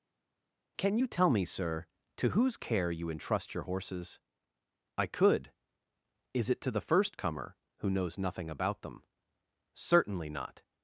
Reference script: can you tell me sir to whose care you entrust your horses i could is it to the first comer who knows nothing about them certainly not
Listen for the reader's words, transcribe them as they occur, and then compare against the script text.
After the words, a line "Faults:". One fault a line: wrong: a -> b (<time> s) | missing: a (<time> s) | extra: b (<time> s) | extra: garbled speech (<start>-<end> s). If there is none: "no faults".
can you tell me sir to whose care you entrust your horses i could is it to the first comer who knows nothing about them certainly not
Faults:
no faults